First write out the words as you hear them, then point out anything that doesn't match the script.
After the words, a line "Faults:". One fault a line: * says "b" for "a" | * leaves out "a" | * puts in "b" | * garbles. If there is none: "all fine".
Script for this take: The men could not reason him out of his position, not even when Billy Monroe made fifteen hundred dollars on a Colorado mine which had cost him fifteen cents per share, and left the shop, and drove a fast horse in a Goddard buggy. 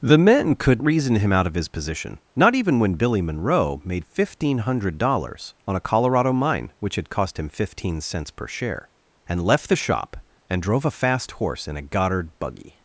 The men could reason him out of his position, not even when Billy Monroe made fifteen hundred dollars on a Colorado mine which had cost him fifteen cents per share, and left the shop, and drove a fast horse in a Goddard buggy.
Faults:
* leaves out "not"